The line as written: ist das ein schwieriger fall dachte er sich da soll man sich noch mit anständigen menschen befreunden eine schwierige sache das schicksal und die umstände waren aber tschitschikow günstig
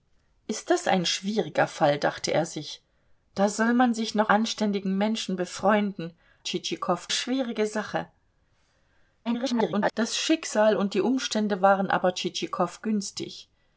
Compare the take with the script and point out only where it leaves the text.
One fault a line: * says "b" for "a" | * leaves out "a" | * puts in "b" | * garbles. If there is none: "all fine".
* leaves out "mit"
* says "tschitschikow" for "eine"
* garbles